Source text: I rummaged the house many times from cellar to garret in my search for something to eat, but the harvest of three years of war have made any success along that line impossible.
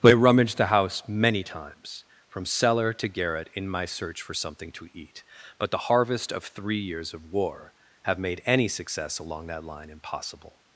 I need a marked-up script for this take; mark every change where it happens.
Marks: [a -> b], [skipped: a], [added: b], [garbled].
I rummaged the house many times from cellar to garret in my search for something to eat, but the harvest of three years of war have made any success along that line impossible.